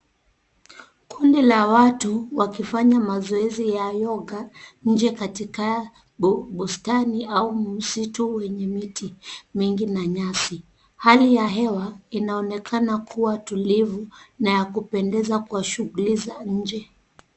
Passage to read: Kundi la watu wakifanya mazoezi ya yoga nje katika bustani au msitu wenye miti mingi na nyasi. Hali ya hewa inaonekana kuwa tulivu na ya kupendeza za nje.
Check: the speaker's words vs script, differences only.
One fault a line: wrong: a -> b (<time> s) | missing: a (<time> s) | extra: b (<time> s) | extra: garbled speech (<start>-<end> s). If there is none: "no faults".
extra: kwa shughuli (15.4 s)